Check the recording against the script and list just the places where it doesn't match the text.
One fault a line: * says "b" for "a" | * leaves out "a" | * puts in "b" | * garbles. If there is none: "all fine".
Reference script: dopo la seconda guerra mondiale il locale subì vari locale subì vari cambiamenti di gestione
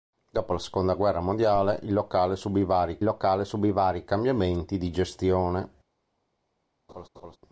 all fine